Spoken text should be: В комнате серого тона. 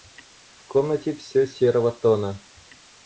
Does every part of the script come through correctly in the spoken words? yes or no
no